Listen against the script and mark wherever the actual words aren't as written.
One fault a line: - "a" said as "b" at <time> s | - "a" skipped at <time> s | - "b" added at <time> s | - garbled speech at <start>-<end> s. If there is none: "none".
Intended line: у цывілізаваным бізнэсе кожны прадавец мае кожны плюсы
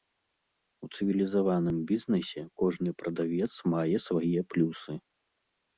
- "кожны" said as "свае" at 4.1 s